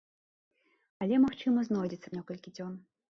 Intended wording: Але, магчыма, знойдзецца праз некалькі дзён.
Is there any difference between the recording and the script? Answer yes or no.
yes